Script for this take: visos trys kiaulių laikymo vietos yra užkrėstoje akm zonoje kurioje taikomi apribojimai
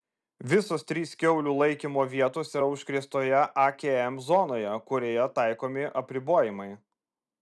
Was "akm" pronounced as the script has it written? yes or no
yes